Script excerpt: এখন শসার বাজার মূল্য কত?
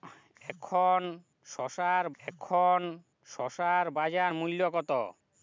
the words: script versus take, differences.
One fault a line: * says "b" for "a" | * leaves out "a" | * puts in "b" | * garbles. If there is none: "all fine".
* puts in "এখন শসার"